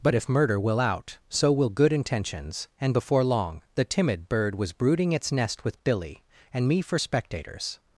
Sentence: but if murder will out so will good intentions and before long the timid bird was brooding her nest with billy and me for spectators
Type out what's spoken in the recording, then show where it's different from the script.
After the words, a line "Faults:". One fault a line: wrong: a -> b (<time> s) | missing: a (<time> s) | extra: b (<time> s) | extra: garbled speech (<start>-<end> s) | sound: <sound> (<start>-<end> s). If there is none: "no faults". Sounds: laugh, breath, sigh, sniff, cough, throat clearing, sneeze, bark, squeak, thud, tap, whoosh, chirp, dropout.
but if murder will out so will good intentions and before long the timid bird was brooding its nest with billy and me for spectators
Faults:
wrong: her -> its (5.1 s)